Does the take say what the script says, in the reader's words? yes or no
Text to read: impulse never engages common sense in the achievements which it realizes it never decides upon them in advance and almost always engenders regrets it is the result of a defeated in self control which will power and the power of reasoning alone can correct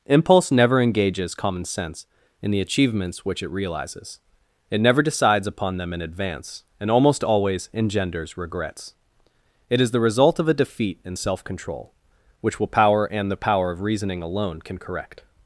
no